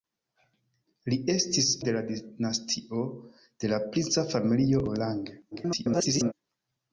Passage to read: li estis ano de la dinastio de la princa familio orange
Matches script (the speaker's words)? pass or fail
fail